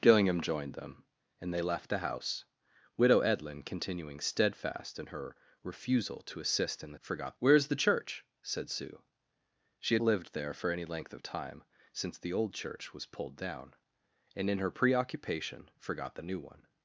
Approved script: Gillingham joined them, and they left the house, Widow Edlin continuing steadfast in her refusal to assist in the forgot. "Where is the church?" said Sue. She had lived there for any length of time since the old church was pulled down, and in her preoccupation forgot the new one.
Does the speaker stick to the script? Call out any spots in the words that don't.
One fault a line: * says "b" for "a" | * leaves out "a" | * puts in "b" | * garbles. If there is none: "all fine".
all fine